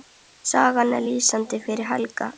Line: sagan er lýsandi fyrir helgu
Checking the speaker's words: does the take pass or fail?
pass